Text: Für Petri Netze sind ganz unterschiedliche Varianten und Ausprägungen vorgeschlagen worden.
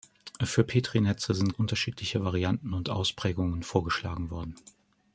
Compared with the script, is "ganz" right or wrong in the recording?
wrong